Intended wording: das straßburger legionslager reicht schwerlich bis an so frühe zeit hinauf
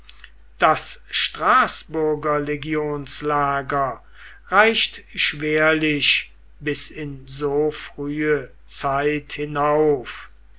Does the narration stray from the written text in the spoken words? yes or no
yes